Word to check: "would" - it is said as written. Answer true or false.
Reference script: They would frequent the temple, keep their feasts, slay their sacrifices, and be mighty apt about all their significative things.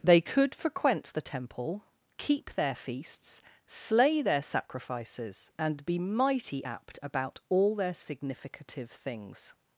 false